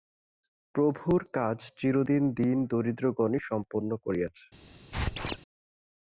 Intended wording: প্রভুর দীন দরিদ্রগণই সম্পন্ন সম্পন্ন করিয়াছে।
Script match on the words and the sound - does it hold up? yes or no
no